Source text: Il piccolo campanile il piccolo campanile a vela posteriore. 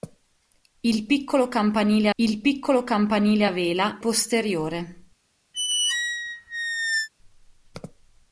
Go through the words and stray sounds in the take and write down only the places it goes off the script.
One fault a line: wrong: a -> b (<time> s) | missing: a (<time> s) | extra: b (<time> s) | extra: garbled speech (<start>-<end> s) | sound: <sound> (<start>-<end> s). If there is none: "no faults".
sound: squeak (5.5-7.1 s)